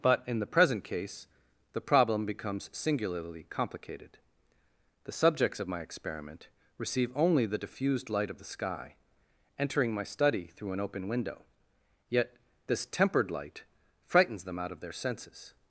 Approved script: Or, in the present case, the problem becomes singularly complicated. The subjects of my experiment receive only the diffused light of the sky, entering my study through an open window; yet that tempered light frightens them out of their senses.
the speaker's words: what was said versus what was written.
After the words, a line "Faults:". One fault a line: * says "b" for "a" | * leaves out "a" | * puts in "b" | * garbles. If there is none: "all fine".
But, in the present case, the problem becomes singularly complicated. The subjects of my experiment receive only the diffused light of the sky, entering my study through an open window; yet this tempered light frightens them out of their senses.
Faults:
* says "But" for "Or"
* says "this" for "that"